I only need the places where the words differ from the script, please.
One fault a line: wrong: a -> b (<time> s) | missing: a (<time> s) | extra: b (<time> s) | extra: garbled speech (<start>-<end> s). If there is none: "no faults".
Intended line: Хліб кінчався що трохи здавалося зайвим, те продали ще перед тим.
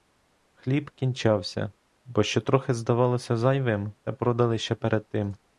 extra: бо (2.0 s)